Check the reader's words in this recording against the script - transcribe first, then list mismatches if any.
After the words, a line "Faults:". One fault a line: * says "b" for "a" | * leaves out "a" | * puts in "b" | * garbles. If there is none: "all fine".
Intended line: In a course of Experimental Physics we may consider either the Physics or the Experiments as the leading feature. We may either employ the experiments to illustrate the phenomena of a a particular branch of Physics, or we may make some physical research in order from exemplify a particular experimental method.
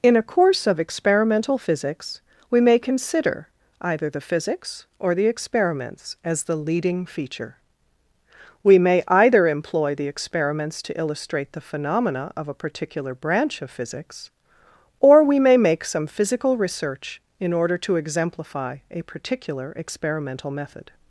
In a course of Experimental Physics we may consider either the Physics or the Experiments as the leading feature. We may either employ the experiments to illustrate the phenomena of a particular branch of Physics, or we may make some physical research in order to exemplify a particular experimental method.
Faults:
* leaves out "a"
* says "to" for "from"